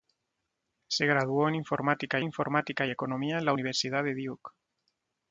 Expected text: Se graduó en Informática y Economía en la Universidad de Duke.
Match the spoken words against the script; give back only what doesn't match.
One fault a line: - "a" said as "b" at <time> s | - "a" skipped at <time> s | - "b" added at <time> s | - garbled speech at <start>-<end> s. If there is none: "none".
- "Informática" added at 2.2 s